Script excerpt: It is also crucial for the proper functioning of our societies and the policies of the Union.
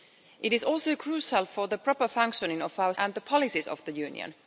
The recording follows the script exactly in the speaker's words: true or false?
false